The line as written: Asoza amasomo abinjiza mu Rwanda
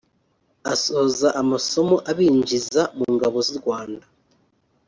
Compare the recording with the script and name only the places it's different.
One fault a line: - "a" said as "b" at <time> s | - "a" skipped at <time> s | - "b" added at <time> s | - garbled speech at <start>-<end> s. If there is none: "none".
- "ngabo z'u" added at 3.1 s